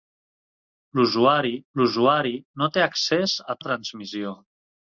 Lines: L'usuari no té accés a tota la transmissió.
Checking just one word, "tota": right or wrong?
wrong